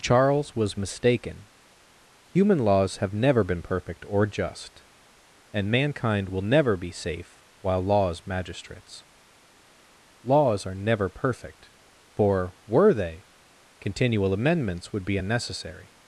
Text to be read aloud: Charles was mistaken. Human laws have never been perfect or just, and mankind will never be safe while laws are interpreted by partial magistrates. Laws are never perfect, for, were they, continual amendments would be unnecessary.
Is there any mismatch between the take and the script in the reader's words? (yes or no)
yes